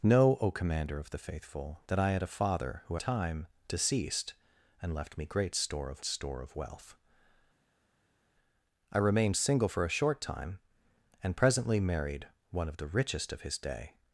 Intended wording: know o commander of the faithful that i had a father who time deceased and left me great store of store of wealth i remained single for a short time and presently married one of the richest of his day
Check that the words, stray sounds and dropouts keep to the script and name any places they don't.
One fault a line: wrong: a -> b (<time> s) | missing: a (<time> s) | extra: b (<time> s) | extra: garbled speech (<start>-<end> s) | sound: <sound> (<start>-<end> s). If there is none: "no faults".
no faults